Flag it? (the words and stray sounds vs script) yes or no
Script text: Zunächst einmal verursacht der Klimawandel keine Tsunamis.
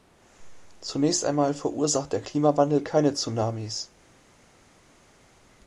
no